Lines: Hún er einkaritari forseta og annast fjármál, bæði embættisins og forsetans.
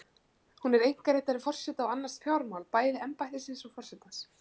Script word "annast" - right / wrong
right